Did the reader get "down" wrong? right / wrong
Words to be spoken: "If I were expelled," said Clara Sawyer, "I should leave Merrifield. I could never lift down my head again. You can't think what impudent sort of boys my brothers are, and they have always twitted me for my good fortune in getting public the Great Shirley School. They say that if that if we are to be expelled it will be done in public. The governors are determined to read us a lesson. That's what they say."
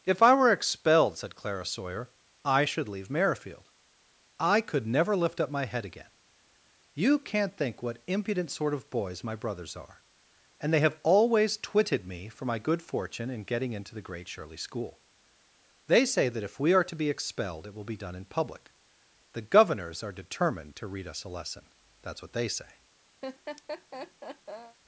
wrong